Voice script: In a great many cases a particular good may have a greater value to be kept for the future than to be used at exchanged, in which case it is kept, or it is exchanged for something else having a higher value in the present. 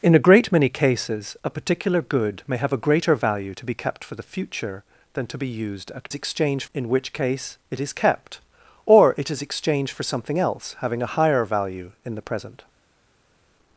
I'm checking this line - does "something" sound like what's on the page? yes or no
yes